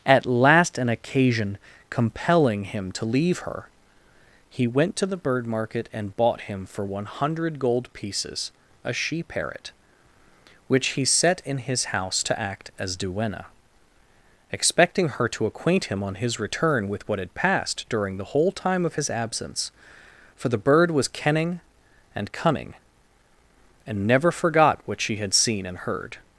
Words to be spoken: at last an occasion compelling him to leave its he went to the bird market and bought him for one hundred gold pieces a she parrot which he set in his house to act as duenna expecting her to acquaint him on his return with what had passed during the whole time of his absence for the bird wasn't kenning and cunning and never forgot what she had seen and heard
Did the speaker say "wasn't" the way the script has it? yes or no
no